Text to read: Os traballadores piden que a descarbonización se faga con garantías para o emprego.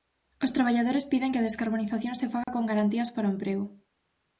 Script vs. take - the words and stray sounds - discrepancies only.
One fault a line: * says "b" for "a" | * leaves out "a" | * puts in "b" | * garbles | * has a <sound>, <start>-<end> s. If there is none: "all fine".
* has a dropout, 2.4-2.5 s